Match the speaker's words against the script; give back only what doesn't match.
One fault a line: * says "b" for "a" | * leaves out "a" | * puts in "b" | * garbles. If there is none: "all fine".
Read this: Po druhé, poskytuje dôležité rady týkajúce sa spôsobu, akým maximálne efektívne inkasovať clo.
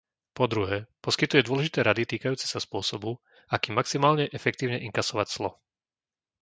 all fine